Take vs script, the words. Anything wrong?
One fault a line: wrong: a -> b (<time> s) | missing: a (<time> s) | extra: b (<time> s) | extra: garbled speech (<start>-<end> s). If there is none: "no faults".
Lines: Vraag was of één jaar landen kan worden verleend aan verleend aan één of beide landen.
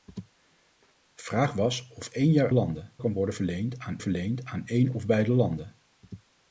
no faults